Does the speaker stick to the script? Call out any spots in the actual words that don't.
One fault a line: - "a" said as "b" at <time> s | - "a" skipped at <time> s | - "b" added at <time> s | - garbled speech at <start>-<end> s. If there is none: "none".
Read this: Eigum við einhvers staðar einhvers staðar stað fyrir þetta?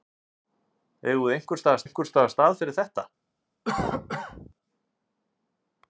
none